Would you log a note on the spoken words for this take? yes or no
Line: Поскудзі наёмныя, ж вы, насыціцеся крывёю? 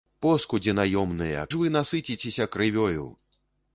no